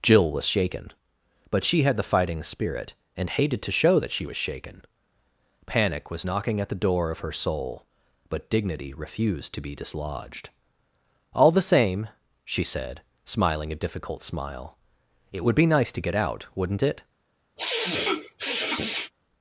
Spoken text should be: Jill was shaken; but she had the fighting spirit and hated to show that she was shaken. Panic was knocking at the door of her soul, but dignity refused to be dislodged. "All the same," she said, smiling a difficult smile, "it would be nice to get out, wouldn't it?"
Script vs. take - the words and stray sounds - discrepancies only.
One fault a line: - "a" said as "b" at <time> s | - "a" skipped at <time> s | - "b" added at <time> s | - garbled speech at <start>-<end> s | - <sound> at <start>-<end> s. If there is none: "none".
- sniff at 17.6-19.1 s